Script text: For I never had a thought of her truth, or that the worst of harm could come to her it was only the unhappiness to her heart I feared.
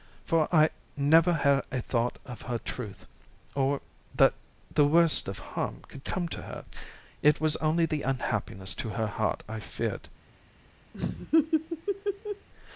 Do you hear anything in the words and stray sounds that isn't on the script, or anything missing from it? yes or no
yes